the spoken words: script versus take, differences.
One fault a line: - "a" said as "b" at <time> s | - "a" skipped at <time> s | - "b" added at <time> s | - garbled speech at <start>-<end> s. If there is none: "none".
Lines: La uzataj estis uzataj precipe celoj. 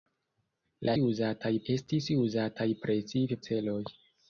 none